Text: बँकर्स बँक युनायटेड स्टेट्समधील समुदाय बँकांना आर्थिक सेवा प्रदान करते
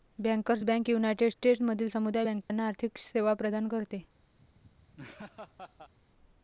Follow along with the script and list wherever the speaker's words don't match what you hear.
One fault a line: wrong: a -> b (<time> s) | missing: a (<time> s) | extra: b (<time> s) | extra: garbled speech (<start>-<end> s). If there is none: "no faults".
no faults